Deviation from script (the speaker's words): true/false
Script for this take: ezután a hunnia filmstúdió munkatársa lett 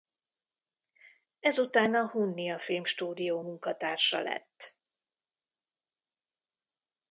false